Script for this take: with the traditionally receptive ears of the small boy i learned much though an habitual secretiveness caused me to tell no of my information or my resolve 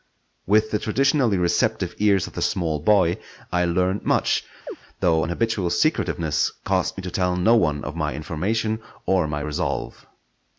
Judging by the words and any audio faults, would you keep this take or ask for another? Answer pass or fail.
fail